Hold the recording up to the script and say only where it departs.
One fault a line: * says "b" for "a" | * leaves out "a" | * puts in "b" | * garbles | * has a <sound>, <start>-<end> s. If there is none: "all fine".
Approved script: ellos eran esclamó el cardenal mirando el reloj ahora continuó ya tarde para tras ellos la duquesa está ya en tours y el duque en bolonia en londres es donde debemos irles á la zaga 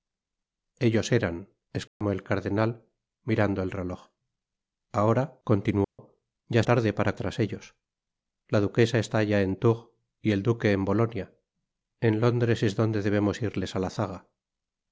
* has a dropout, 1.9-2.0 s
* has a dropout, 5.8-6.0 s